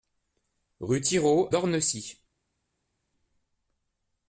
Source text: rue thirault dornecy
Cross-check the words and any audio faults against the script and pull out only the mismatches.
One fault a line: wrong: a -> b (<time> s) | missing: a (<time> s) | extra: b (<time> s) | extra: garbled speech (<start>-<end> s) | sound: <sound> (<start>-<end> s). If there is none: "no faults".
no faults